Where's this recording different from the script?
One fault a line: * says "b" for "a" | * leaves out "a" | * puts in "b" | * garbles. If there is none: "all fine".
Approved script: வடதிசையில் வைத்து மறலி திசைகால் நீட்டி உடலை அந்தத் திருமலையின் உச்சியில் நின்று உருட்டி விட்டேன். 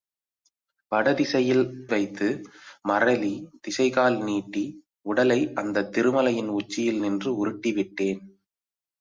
all fine